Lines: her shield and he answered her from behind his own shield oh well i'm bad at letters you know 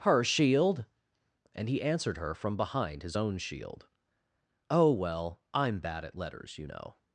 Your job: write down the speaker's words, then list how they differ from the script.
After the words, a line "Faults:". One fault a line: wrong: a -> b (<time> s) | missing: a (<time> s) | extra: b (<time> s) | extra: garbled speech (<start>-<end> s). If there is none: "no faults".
her shield and he answered her from behind his own shield oh well i'm bad at letters you know
Faults:
no faults